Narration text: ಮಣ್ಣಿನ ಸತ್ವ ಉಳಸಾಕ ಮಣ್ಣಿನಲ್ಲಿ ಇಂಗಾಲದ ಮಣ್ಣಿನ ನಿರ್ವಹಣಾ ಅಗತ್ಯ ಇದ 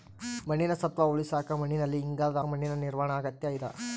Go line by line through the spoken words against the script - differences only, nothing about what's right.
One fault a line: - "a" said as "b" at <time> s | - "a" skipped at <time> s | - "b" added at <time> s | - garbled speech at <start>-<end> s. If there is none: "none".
none